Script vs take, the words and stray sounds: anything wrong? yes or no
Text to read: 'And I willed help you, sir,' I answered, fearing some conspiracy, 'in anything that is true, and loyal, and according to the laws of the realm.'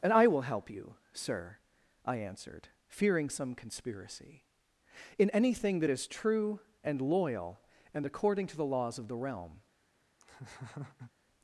yes